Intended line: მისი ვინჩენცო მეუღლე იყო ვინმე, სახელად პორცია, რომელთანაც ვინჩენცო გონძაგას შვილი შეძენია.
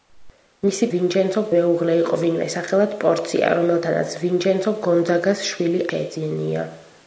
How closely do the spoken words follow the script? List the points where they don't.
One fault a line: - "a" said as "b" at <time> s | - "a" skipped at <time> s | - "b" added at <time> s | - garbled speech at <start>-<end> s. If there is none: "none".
none